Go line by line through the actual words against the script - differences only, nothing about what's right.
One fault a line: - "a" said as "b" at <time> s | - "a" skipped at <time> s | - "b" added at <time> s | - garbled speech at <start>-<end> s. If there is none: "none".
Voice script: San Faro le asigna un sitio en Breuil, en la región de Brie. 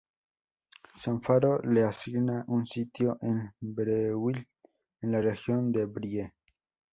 none